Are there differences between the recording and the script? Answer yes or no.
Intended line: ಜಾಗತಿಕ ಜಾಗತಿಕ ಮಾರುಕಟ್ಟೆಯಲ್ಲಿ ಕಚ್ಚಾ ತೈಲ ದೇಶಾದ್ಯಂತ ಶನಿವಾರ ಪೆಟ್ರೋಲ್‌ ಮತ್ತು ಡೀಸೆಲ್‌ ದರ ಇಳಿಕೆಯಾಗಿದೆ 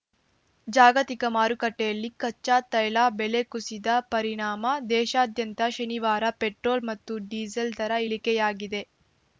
yes